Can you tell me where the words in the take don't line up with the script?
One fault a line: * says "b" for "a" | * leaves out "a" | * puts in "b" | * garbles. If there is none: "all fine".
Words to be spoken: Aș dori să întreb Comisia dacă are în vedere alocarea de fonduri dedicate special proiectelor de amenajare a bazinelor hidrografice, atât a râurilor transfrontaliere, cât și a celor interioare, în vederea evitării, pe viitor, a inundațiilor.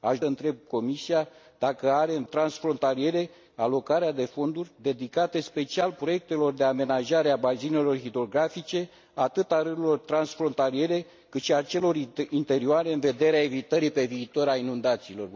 * leaves out "dori să"
* says "transfrontaliere" for "vedere"